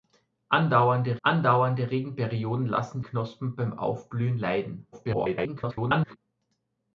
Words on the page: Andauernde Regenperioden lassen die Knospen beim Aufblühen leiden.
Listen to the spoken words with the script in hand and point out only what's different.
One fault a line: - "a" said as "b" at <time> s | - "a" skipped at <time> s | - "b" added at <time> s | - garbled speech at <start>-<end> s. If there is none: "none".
- "andauernde" added at 1.2 s
- "die" skipped at 3.0 s
- garbled speech at 4.9-6.2 s